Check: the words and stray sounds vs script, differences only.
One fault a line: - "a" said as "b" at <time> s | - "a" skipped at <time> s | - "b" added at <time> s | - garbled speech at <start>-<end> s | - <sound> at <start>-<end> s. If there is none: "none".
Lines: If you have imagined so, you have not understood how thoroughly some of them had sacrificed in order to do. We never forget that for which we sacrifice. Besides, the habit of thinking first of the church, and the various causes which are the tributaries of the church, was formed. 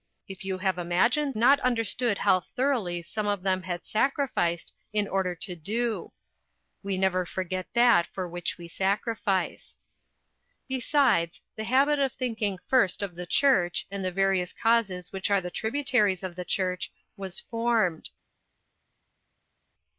- "so you have" skipped at 1.4 s